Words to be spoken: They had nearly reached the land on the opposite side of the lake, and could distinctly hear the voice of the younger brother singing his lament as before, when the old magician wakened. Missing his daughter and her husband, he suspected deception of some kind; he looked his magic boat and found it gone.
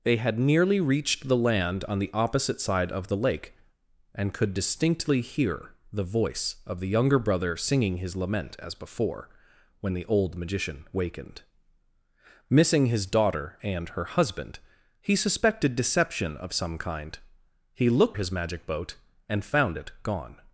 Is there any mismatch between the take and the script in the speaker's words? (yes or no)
no